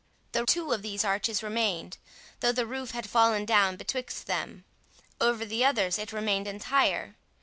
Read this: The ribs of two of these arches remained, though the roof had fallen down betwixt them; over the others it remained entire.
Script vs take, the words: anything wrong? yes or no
yes